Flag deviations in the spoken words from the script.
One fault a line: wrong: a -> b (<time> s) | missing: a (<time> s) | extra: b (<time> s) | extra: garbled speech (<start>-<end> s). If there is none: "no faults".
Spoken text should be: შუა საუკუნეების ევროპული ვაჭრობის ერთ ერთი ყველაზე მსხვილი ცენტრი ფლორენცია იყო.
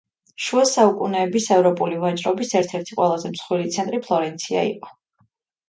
no faults